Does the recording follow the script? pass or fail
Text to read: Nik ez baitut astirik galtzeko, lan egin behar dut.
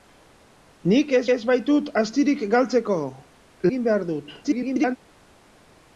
fail